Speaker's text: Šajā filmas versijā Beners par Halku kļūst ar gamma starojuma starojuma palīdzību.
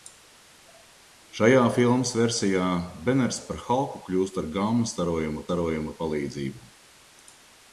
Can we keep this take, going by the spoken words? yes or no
yes